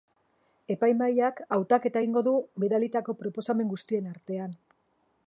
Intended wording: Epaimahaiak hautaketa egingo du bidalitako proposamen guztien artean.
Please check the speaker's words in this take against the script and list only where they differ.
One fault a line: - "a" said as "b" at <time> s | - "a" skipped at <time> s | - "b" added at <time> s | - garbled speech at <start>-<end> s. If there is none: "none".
none